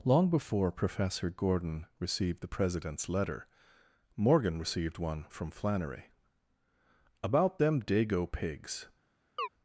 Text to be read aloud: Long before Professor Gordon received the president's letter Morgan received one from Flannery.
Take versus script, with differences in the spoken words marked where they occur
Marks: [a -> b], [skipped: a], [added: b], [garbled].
Long before Professor Gordon received the president's letter Morgan received one from Flannery. [added: About them dago pigs]